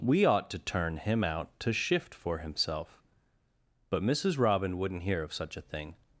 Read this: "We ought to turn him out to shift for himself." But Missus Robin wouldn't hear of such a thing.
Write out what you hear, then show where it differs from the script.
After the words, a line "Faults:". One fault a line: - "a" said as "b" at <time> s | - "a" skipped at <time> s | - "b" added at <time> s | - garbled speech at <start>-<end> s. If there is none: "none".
"We ought to turn him out to shift for himself." But Missus Robin wouldn't hear of such a thing.
Faults:
none